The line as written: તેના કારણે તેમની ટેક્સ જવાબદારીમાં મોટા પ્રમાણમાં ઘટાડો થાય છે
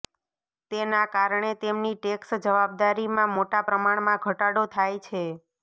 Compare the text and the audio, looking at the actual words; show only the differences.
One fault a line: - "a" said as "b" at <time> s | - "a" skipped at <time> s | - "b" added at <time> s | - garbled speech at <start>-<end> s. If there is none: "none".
none